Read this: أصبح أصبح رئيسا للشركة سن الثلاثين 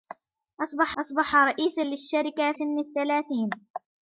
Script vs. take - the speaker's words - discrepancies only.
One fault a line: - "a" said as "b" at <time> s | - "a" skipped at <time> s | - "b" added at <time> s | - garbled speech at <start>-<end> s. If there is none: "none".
none